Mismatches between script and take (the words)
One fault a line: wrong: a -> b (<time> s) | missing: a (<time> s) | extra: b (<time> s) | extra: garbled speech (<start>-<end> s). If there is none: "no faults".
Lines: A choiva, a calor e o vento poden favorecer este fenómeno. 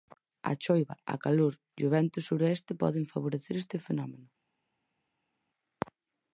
extra: suroeste (2.3 s)